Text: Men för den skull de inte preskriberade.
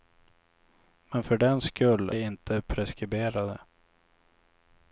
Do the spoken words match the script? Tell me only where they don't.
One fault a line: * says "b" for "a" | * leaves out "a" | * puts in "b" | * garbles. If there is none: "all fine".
all fine